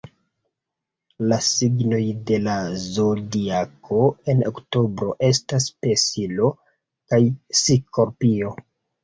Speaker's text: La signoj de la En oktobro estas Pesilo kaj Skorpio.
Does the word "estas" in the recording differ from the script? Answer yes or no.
no